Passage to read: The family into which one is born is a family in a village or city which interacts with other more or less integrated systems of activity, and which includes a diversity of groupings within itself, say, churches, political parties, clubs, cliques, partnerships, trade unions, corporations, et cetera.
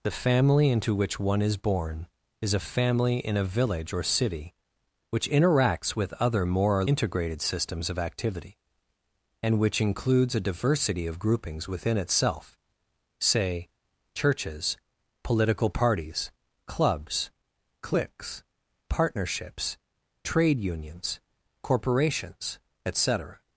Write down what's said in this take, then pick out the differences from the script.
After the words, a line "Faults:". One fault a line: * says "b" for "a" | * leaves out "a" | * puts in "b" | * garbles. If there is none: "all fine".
The family into which one is born is a family in a village or city which interacts with other more or integrated systems of activity, and which includes a diversity of groupings within itself, say, churches, political parties, clubs, cliques, partnerships, trade unions, corporations, et cetera.
Faults:
* leaves out "less"